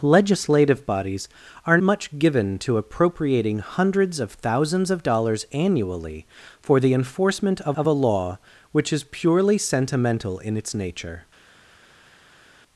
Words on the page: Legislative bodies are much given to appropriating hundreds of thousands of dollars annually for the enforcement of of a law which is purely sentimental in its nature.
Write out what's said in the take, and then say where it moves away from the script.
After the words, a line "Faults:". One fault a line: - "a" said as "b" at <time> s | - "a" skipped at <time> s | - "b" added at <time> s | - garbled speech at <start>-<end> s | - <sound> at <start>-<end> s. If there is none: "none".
Legislative bodies are much given to appropriating hundreds of thousands of dollars annually for the enforcement of of a law which is purely sentimental in its nature.
Faults:
none